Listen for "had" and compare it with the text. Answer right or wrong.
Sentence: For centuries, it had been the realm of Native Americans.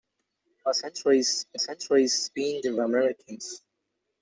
wrong